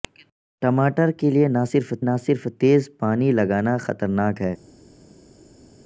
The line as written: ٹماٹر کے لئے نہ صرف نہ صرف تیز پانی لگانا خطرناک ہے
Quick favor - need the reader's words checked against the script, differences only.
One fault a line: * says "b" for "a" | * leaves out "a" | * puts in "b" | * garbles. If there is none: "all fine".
all fine